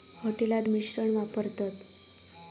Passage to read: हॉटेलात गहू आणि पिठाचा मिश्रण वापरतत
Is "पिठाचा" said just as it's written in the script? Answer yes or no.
no